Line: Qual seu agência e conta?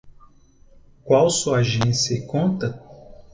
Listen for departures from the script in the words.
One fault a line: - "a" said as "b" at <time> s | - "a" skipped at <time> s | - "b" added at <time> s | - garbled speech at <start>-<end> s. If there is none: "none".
- "seu" said as "sua" at 1.3 s